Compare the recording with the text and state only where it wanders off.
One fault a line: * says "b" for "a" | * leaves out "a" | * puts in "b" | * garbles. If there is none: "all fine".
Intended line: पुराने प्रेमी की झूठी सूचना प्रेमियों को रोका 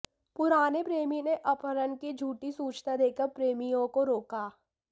* puts in "ने अपहरण"
* puts in "देकर"